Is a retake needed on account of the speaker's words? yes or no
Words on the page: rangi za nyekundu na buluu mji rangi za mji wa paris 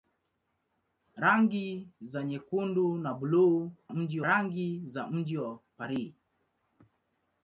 no